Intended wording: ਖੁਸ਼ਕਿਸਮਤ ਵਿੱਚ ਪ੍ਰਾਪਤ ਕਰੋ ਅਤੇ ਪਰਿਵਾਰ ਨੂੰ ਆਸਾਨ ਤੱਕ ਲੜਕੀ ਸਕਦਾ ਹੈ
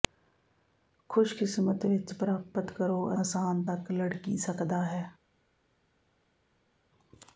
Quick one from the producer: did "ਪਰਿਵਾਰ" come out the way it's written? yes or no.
no